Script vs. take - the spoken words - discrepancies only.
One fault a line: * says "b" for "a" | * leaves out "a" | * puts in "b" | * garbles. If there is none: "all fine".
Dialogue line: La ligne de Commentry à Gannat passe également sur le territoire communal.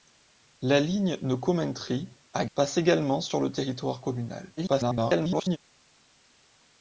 * leaves out "Gannat"
* garbles